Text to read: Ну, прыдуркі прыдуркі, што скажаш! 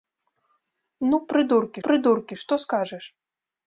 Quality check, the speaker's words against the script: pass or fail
pass